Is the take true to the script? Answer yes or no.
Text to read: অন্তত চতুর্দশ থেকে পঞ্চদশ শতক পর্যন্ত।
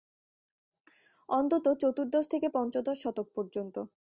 yes